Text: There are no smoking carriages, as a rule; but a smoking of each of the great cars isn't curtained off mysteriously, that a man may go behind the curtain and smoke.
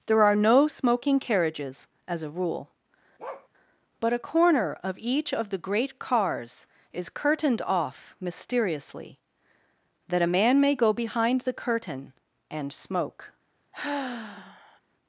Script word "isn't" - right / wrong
wrong